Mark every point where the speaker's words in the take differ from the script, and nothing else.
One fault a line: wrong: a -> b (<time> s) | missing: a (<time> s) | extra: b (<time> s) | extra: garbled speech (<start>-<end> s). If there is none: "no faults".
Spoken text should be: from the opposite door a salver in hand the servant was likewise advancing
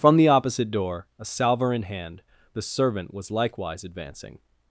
no faults